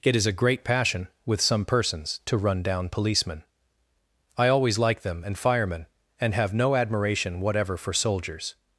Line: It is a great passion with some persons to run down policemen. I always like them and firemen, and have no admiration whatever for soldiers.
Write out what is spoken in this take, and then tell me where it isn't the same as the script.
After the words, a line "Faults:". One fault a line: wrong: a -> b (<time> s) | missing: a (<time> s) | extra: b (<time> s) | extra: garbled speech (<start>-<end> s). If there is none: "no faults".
It is a great passion with some persons to run down policemen. I always like them and firemen, and have no admiration whatever for soldiers.
Faults:
no faults